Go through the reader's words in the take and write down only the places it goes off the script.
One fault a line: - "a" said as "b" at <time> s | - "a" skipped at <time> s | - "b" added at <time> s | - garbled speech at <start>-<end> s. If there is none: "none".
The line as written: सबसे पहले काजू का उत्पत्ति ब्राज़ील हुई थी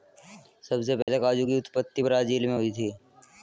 - "का" said as "की" at 1.4 s
- "मैं" added at 2.5 s